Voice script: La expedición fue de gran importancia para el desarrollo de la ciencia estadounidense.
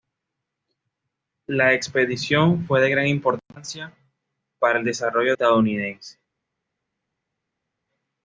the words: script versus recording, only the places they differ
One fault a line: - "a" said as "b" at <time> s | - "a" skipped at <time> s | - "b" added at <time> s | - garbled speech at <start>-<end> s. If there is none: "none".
- "de la ciencia" skipped at 5.3 s